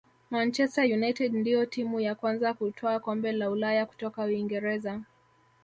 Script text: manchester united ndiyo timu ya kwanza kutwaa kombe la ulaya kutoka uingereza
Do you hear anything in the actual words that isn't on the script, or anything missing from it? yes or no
no